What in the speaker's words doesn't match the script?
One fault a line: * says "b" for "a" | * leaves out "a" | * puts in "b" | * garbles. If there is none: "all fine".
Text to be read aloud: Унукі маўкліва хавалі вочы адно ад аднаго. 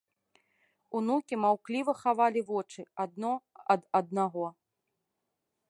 all fine